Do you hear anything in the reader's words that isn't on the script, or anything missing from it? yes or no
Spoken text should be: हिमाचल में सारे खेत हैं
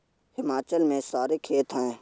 no